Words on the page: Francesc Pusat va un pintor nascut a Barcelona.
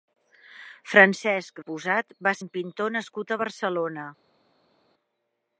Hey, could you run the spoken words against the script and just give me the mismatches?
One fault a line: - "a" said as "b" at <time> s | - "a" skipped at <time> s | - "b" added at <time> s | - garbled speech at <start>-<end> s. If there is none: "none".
none